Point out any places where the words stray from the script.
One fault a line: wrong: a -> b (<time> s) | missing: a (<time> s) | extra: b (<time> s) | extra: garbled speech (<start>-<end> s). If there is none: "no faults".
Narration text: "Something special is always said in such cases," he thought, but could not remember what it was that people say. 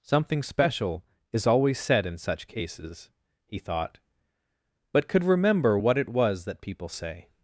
missing: not (5.2 s)